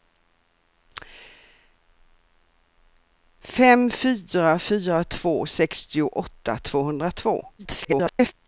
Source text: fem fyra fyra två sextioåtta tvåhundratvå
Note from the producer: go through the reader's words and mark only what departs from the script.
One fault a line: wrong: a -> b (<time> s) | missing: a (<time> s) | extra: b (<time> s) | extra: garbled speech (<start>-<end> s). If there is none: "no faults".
extra: garbled speech (7.6-8.3 s)